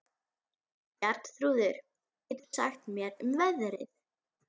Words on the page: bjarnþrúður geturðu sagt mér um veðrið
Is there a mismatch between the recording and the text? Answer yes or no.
no